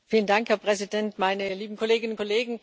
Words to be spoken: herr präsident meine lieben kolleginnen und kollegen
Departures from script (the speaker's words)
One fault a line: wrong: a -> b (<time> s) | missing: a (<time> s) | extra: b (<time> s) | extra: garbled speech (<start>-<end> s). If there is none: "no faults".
no faults